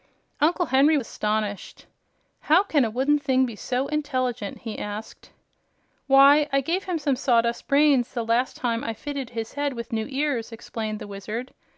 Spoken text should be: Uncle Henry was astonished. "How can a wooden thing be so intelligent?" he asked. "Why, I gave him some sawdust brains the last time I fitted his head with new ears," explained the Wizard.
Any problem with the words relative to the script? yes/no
yes